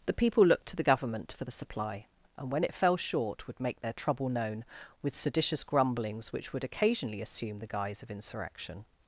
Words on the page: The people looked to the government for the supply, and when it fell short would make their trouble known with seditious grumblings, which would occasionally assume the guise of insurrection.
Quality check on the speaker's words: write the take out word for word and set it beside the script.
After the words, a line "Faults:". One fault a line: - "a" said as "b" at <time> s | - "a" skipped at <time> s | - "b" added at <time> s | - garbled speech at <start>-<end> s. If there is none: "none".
The people looked to the government for the supply, and when it fell short would make their trouble known with seditious grumblings, which would occasionally assume the guise of insurrection.
Faults:
none